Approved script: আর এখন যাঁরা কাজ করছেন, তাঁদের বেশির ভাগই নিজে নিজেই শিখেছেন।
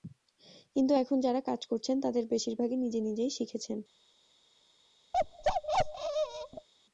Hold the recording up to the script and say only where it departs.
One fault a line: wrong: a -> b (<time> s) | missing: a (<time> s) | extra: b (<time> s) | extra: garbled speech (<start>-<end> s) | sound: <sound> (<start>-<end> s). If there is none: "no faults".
wrong: আর -> কিন্তু (0.8 s)
sound: bark (5.1-6.7 s)